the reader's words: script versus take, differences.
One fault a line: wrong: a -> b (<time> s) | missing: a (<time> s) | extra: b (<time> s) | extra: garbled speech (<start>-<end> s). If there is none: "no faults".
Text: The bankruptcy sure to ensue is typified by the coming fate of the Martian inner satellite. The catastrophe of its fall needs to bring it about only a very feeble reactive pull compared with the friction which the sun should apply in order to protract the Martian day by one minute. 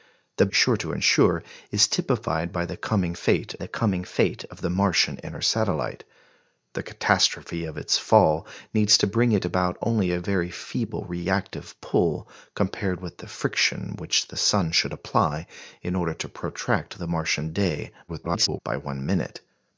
missing: bankruptcy (0.5 s)
extra: the coming fate (3.6 s)
extra: garbled speech (18.1-18.6 s)